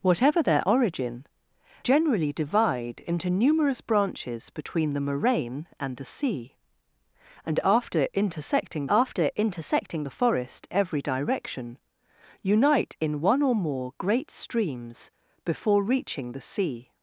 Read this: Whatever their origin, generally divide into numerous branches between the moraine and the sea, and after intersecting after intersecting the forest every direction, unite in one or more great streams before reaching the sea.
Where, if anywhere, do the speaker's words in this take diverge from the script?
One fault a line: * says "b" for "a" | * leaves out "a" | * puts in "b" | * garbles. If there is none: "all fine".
all fine